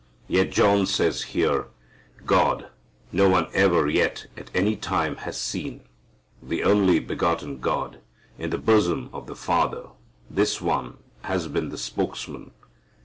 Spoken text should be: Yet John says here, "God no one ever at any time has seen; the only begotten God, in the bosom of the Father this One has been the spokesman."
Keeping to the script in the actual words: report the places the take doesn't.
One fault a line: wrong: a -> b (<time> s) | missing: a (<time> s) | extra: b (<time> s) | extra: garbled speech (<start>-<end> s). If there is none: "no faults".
extra: yet (3.9 s)